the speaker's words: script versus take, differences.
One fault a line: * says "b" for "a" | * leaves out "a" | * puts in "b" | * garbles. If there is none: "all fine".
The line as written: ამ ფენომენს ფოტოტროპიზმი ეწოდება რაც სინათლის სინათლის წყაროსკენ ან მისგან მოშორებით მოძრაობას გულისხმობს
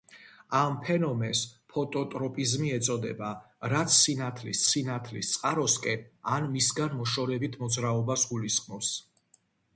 all fine